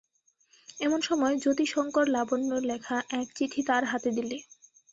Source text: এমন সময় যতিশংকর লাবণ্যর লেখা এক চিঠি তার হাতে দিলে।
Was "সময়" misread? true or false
false